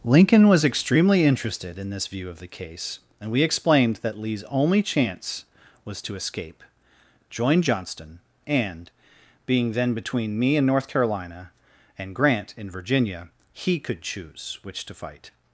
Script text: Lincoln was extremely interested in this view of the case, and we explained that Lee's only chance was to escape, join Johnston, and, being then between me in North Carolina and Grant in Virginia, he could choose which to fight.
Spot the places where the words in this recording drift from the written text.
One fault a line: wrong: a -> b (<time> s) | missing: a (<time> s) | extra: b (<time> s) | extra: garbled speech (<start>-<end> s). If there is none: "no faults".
no faults